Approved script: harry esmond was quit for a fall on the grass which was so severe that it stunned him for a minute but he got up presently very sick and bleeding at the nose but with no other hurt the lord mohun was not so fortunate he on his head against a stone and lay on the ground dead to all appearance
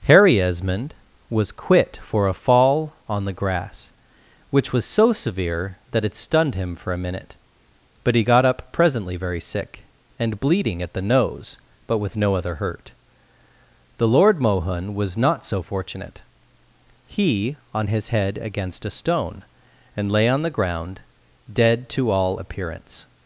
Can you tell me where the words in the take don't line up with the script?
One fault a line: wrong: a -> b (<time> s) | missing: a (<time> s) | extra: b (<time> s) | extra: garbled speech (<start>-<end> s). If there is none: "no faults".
no faults